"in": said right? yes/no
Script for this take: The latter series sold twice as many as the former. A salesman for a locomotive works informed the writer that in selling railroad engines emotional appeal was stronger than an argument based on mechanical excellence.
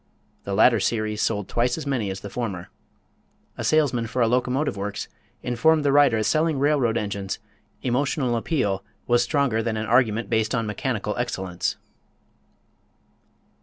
no